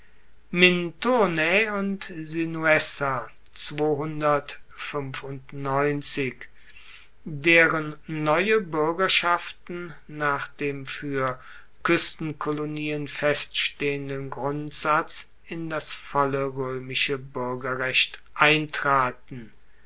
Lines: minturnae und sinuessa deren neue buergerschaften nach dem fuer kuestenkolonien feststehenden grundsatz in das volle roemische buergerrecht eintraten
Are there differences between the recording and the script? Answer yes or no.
no